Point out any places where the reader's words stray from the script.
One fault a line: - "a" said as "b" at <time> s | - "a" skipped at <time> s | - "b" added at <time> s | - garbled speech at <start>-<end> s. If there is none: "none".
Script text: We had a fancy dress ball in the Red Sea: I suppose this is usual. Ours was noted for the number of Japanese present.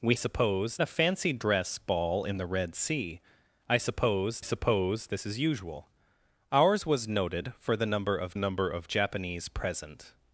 - "had" said as "suppose" at 0.1 s
- "suppose" added at 4.4 s
- "number of" added at 8.3 s